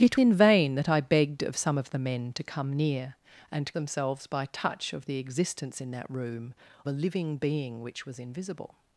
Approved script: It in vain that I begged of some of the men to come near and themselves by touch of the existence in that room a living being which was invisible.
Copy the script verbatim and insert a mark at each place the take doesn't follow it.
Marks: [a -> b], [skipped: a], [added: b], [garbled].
It in vain that I begged of some of the men to come near and themselves by touch of the existence in that room a living being which was invisible.